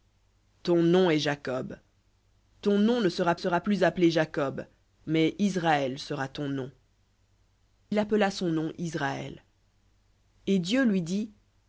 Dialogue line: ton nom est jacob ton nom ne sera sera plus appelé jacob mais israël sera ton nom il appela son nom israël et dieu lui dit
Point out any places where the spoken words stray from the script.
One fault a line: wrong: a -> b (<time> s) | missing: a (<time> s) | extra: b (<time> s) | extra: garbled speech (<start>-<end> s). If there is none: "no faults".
no faults